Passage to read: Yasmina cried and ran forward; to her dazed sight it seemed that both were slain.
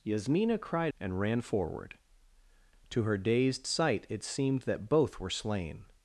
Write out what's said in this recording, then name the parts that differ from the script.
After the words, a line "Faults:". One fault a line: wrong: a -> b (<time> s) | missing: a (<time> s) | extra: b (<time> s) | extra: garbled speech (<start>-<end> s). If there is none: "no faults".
Yasmina cried and ran forward; to her dazed sight it seemed that both were slain.
Faults:
no faults